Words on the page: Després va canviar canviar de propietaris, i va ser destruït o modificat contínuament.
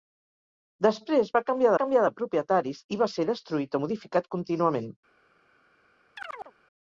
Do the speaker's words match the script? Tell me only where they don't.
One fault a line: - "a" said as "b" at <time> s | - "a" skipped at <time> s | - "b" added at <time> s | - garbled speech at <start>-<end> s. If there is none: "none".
none